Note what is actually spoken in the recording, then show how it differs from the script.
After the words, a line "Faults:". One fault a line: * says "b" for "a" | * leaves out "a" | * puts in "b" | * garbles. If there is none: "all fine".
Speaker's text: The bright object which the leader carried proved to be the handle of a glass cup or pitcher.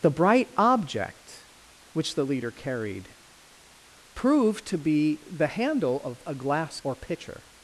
The bright object which the leader carried proved to be the handle of a glass or pitcher.
Faults:
* leaves out "cup"